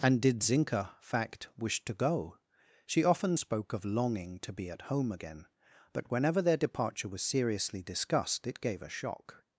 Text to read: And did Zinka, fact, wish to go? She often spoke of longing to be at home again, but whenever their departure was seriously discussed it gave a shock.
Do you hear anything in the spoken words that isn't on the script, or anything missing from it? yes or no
no